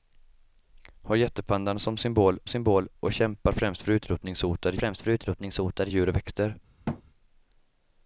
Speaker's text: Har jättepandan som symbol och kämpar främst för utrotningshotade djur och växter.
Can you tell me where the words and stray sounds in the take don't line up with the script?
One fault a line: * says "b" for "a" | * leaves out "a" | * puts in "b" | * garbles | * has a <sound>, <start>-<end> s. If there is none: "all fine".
* puts in "symbol"
* puts in "främst för utrotningshotade"
* has a thud, 6.9-7.0 s